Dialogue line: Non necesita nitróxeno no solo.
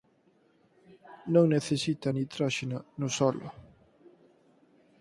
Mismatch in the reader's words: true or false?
false